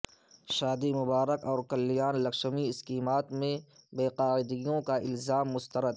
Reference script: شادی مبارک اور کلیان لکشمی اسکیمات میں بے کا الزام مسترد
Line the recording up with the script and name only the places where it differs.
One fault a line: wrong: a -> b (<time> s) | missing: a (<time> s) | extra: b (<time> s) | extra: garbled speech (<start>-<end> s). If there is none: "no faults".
extra: قاعدگیوں (4.2 s)